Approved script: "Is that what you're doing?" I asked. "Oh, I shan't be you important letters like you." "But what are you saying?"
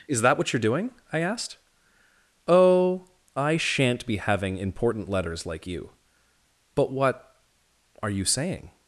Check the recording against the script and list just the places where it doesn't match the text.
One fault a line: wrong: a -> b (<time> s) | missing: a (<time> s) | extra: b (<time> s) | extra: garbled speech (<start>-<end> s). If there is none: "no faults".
wrong: you -> having (4.2 s)